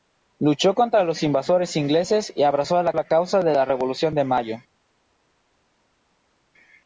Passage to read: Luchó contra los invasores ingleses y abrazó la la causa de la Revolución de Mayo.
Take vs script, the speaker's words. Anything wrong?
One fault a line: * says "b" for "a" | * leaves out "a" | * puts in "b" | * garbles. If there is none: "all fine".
all fine